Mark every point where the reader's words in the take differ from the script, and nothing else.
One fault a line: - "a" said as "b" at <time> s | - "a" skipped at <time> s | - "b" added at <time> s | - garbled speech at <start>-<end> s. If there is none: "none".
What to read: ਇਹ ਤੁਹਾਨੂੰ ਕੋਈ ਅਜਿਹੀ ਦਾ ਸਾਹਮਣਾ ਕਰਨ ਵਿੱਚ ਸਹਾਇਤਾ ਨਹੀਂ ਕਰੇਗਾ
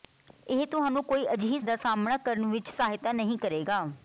none